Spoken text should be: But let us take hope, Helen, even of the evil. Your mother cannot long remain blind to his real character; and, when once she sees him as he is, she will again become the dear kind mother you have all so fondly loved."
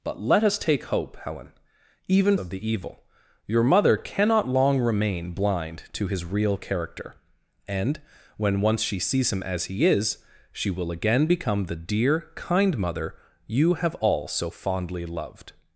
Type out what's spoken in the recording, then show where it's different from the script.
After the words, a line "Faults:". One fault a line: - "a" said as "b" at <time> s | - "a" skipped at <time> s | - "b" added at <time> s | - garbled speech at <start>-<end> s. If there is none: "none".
But let us take hope, Helen, even of the evil. Your mother cannot long remain blind to his real character; and, when once she sees him as he is, she will again become the dear kind mother you have all so fondly loved."
Faults:
none